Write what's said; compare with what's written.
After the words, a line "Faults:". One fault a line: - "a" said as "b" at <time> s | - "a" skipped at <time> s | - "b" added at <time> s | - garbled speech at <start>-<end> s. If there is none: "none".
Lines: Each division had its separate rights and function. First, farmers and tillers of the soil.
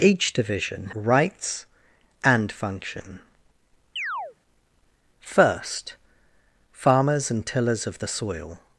Each division rights and function. First, farmers and tillers of the soil.
Faults:
- "had its separate" skipped at 0.9 s